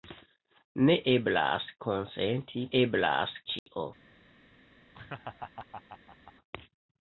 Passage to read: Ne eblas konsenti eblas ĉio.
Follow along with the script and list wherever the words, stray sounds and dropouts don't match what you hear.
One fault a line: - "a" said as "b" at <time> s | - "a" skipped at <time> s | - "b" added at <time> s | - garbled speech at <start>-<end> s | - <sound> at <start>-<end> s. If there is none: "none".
- dropout at 3.6-3.7 s
- laugh at 4.9-6.3 s